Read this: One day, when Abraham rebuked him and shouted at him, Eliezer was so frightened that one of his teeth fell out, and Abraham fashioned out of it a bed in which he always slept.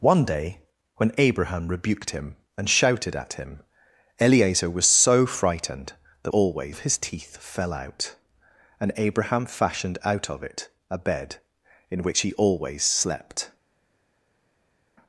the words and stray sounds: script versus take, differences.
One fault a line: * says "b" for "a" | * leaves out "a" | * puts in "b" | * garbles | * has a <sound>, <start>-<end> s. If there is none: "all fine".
* says "always" for "one"